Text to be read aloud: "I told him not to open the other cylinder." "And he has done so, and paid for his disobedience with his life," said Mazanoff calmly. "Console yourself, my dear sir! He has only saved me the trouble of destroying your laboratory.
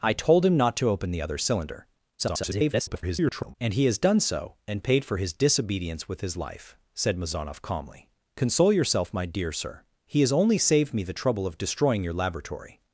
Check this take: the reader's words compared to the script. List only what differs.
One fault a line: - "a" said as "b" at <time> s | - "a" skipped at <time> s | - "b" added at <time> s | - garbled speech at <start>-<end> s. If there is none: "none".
- garbled speech at 2.2-3.5 s